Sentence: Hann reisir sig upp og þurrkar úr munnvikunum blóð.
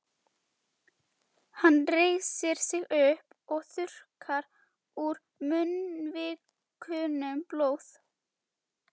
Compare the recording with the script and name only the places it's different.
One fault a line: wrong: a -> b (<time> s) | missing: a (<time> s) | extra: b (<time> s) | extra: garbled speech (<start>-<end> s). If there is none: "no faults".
no faults